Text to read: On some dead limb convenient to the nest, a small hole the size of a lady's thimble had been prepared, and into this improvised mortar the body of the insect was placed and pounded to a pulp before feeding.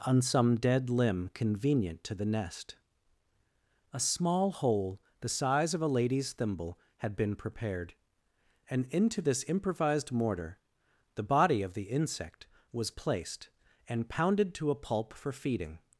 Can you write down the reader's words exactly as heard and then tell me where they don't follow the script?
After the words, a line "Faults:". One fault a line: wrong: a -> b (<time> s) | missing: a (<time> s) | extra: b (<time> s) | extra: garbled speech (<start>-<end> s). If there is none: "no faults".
On some dead limb convenient to the nest, a small hole the size of a lady's thimble had been prepared, and into this improvised mortar the body of the insect was placed and pounded to a pulp for feeding.
Faults:
wrong: before -> for (15.1 s)